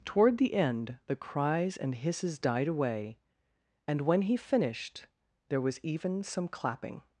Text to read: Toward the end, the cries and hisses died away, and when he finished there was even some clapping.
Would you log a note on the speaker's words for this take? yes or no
no